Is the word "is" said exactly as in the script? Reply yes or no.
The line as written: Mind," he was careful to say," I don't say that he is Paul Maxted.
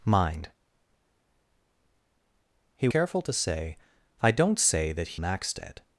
no